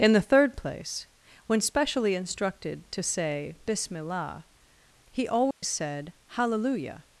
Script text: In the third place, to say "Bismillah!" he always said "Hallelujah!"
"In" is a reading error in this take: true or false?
false